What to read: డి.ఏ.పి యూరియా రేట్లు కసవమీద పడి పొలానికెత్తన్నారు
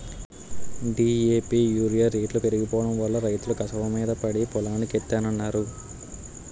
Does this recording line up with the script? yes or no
no